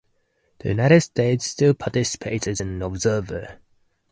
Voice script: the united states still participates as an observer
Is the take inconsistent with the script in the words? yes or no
no